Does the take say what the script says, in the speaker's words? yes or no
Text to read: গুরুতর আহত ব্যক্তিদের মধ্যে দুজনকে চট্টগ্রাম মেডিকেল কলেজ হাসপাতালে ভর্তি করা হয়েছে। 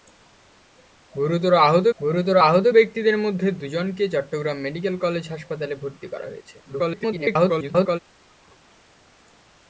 no